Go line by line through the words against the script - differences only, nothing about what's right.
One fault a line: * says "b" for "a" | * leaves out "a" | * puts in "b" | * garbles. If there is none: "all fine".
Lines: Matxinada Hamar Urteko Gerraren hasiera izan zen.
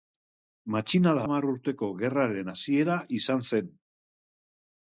all fine